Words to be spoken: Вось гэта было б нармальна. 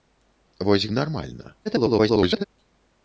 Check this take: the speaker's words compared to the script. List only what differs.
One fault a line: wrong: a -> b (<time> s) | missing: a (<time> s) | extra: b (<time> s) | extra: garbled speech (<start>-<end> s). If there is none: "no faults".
missing: гэта было (0.9 s)
extra: garbled speech (1.7-2.4 s)